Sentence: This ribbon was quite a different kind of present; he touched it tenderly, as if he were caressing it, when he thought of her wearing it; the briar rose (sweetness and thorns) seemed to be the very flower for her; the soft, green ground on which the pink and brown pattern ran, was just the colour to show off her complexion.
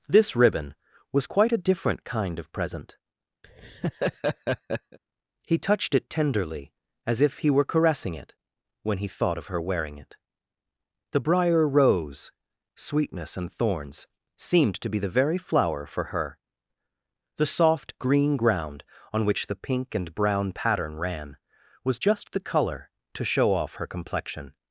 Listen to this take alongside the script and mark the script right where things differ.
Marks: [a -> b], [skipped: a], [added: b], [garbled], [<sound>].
This ribbon was quite a different kind of present; [laugh] he touched it tenderly, as if he were caressing it, when he thought of her wearing it; the briar rose (sweetness and thorns) seemed to be the very flower for her; the soft, green ground on which the pink and brown pattern ran, was just the colour to show off her complexion.